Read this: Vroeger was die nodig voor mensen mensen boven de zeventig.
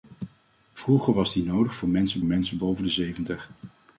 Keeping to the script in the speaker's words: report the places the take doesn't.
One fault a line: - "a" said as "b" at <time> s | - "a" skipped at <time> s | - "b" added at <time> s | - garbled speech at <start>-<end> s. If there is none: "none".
none